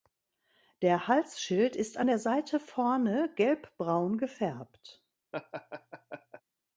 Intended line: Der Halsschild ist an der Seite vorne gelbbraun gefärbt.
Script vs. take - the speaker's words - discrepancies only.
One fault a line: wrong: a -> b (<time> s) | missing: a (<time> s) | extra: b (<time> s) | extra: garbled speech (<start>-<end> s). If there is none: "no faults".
no faults